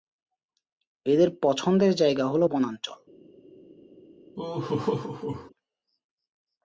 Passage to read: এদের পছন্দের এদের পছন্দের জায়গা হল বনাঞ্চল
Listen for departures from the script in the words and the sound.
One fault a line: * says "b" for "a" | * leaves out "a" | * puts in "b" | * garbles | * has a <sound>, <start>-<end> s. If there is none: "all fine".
* leaves out "এদের পছন্দের"
* has a laugh, 4.4-5.5 s